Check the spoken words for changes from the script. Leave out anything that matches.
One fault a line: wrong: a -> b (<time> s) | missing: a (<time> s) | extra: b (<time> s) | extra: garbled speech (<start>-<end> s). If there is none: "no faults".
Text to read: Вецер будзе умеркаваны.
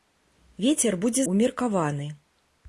no faults